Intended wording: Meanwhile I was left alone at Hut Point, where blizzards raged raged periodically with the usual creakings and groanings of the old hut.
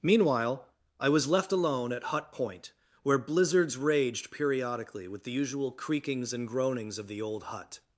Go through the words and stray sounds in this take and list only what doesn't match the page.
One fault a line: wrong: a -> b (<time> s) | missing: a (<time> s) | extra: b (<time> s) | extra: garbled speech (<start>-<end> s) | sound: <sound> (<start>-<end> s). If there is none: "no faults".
missing: raged (4.3 s)